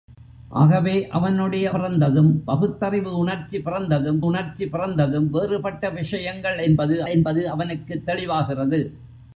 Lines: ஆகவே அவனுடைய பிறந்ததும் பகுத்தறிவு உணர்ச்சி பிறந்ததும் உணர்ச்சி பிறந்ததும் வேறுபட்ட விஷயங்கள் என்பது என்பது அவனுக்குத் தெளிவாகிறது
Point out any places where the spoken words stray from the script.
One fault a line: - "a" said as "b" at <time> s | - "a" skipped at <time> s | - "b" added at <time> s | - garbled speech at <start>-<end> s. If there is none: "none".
none